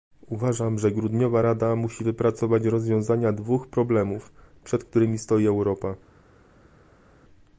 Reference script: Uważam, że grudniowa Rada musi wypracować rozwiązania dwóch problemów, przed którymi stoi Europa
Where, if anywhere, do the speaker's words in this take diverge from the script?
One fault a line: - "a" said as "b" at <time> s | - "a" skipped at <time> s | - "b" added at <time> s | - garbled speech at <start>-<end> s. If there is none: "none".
none